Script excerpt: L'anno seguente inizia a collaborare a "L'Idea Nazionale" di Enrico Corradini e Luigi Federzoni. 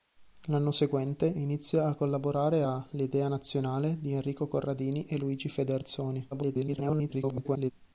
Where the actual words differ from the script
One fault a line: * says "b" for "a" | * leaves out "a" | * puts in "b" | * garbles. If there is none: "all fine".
* garbles